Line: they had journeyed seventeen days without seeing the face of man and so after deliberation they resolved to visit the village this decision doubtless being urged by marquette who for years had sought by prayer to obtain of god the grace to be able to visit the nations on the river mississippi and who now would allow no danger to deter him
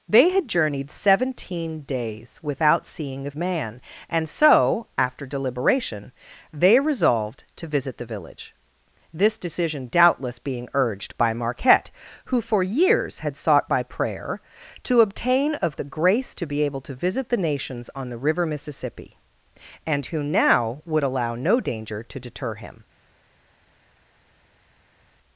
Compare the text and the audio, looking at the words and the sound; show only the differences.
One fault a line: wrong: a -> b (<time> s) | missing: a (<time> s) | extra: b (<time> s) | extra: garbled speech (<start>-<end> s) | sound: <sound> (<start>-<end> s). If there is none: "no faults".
missing: face of (3.3 s)
missing: god (15.8 s)